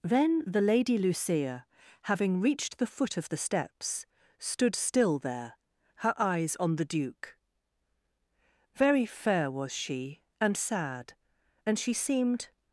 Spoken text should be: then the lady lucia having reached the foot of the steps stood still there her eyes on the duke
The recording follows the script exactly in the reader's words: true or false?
false